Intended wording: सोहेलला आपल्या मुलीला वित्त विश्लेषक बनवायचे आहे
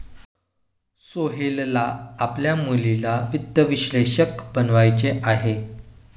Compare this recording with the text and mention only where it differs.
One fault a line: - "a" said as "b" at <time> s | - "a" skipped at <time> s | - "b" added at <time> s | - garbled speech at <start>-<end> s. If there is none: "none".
none